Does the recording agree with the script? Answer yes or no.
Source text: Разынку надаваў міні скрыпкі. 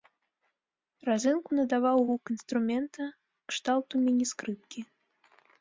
no